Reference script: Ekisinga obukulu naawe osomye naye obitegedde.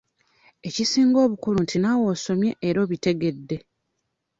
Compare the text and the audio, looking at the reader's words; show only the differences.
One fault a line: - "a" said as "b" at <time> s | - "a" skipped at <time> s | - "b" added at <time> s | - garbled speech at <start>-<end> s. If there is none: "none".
- "nti" added at 1.6 s
- "naye" said as "era" at 2.7 s